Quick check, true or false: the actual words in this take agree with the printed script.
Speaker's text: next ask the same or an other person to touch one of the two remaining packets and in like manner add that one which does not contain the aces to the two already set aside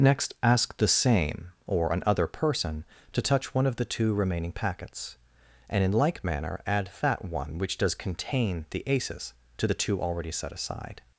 false